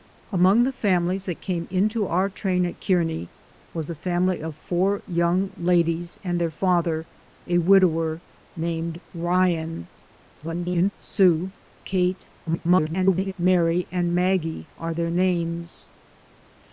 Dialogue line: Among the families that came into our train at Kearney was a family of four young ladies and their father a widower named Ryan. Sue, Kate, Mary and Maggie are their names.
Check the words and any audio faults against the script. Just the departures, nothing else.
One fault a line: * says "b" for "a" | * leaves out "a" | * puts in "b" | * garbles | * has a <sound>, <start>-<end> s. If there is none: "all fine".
* garbles
* garbles